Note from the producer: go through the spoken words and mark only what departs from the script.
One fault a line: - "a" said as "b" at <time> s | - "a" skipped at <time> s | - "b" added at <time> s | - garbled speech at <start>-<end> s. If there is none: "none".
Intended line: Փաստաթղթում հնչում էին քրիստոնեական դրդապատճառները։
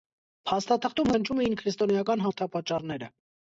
none